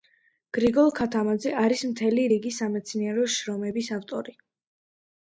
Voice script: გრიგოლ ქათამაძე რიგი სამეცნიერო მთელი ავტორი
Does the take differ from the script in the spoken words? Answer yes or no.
yes